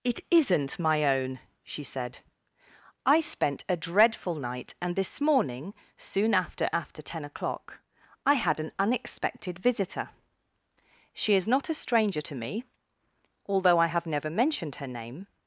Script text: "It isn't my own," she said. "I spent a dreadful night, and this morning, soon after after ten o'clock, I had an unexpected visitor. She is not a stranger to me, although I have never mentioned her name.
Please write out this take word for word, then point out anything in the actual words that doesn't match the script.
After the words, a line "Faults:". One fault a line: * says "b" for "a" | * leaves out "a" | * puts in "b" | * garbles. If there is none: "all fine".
"It isn't my own," she said. "I spent a dreadful night, and this morning, soon after after ten o'clock, I had an unexpected visitor. She is not a stranger to me, although I have never mentioned her name.
Faults:
all fine